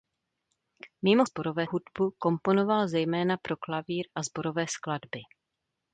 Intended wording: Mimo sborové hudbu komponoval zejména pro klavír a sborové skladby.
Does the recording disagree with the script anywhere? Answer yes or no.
no